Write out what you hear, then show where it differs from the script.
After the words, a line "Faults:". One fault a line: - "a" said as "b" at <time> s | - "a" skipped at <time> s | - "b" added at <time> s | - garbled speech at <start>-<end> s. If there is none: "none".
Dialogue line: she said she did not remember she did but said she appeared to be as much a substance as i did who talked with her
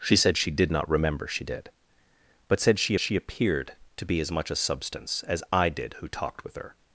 she said she did not remember she did but said she she appeared to be as much a substance as i did who talked with her
Faults:
- "she" added at 3.0 s